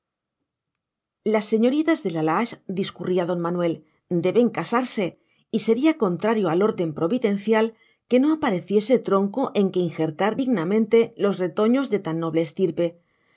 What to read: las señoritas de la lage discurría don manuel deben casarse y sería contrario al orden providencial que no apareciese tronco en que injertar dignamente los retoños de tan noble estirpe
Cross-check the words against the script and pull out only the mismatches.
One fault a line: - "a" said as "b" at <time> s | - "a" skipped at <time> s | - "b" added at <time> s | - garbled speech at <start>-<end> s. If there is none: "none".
none